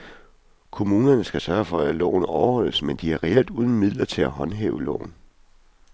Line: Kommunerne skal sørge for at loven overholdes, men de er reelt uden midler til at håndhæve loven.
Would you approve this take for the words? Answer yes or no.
yes